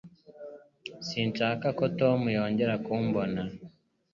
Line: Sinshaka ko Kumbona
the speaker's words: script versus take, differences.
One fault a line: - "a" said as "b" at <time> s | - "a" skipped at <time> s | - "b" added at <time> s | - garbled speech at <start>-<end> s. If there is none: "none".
- "Tom yongera" added at 2.0 s